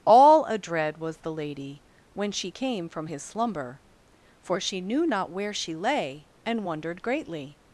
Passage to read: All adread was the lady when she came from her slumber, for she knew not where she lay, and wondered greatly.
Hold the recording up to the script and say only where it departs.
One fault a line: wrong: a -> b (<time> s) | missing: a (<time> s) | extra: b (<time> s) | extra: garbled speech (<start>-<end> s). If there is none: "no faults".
wrong: her -> his (3.0 s)